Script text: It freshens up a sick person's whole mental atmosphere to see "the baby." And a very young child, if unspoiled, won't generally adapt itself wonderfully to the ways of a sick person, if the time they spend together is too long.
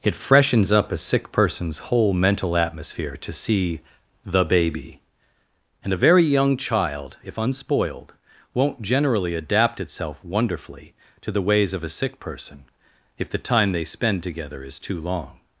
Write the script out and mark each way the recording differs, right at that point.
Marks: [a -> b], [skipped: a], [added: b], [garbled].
It freshens up a sick person's whole mental atmosphere to see "the baby." And a very young child, if unspoiled, won't generally adapt itself wonderfully to the ways of a sick person, if the time they spend together is too long.